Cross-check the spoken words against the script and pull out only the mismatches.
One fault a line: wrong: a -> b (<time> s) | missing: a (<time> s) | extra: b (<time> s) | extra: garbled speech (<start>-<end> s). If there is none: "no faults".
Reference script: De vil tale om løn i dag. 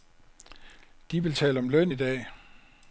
no faults